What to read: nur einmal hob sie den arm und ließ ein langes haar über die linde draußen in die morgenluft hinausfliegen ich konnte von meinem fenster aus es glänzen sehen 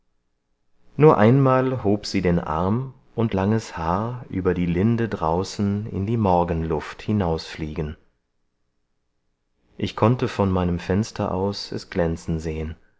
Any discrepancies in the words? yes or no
yes